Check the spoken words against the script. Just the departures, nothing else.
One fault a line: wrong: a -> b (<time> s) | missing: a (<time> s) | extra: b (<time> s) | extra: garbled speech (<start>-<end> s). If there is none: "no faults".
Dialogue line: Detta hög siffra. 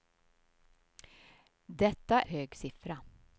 no faults